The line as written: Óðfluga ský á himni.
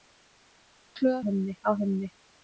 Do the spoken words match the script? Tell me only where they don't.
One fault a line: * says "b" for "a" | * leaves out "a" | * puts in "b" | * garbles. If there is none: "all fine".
* says "himni" for "ský"